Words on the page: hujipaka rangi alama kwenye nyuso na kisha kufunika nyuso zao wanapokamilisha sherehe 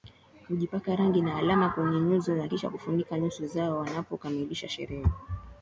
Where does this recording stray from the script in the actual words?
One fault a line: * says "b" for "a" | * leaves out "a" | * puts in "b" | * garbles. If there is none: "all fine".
* puts in "na"